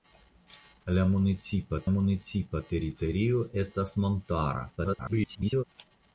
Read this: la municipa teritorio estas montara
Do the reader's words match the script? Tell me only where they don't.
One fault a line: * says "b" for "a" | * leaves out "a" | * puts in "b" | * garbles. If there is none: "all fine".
* puts in "municipa"
* garbles